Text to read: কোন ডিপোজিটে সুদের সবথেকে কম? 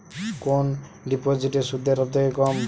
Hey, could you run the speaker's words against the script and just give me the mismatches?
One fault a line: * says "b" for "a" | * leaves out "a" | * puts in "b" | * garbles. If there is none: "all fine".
all fine